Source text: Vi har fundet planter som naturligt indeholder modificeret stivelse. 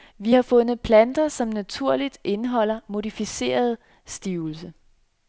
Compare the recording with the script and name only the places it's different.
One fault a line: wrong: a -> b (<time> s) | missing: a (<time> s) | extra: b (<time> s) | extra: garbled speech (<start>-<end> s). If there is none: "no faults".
no faults